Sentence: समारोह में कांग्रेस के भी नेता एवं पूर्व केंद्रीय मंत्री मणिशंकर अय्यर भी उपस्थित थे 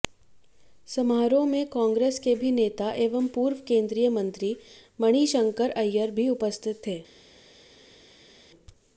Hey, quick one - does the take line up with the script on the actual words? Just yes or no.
yes